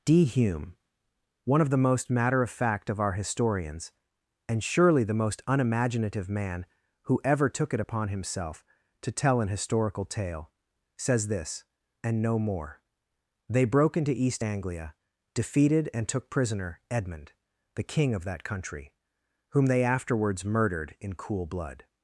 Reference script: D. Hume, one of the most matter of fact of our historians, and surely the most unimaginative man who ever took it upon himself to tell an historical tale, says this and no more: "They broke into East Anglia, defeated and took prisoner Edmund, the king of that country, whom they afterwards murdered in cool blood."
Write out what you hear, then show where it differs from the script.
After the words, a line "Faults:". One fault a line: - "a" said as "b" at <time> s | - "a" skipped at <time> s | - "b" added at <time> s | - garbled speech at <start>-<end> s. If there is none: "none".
D. Hume, one of the most matter of fact of our historians, and surely the most unimaginative man who ever took it upon himself to tell an historical tale, says this and no more: "They broke into East Anglia, defeated and took prisoner Edmund, the king of that country, whom they afterwards murdered in cool blood."
Faults:
none